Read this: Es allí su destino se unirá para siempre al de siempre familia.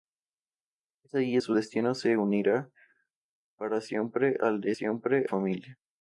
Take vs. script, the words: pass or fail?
pass